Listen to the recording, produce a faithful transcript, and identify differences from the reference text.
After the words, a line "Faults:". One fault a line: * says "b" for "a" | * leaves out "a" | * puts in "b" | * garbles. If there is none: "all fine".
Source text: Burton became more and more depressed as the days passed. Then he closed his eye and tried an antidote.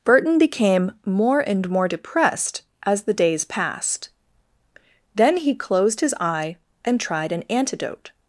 Burton became more and more depressed as the days passed. Then he closed his eye and tried an antidote.
Faults:
all fine